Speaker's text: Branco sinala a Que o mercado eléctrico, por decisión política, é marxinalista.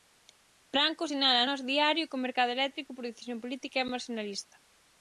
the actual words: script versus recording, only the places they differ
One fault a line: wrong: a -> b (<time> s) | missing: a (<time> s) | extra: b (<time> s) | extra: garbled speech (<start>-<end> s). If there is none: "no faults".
extra: Nós Diario (1.5 s)